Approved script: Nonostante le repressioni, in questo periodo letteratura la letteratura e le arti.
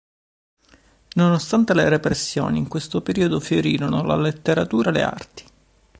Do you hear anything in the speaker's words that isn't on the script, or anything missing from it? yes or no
yes